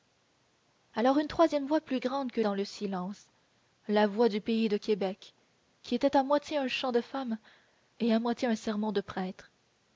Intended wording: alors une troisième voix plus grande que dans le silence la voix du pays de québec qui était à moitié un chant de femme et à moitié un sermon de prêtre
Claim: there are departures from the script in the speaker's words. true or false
false